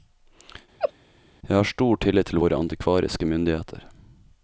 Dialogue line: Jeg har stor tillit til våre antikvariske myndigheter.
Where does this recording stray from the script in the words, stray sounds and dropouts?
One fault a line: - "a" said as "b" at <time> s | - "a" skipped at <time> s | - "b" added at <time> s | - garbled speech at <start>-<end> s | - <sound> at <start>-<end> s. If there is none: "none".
- laugh at 0.8-0.9 s